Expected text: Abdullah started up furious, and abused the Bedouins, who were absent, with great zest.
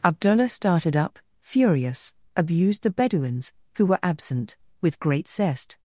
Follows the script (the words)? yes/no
no